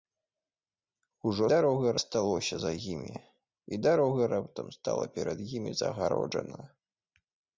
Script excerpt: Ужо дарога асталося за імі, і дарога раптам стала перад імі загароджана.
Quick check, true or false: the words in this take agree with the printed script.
true